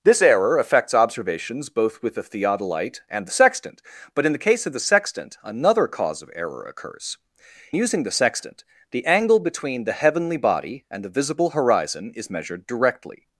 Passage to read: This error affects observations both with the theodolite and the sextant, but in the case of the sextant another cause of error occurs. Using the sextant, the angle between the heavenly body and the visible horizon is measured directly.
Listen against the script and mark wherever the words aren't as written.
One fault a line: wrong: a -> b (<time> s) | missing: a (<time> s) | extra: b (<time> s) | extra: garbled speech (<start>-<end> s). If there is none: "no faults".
no faults